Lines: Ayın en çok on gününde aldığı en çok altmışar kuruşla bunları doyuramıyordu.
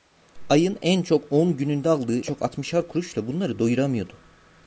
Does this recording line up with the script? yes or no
no